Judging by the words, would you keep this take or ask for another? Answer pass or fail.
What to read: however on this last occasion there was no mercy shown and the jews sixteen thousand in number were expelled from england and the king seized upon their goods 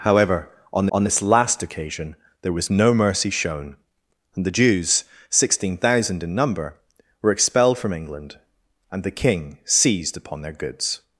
fail